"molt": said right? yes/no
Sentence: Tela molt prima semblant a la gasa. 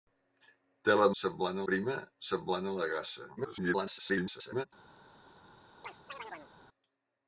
no